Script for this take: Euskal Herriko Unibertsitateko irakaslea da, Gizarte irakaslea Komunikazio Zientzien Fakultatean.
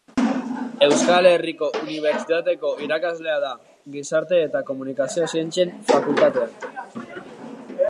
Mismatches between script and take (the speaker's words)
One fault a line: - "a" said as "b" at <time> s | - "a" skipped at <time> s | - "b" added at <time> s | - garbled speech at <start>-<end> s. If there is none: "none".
- "irakaslea" said as "eta" at 4.5 s